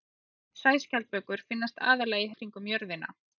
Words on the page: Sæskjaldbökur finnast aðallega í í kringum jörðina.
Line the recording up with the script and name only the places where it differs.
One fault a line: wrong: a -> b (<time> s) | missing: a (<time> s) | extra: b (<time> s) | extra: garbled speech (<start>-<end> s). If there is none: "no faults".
no faults